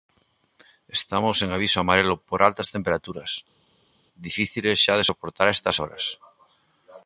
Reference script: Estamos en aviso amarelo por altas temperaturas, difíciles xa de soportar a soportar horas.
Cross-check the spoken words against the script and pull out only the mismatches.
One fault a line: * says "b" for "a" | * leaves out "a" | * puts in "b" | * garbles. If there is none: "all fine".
* says "estas" for "soportar"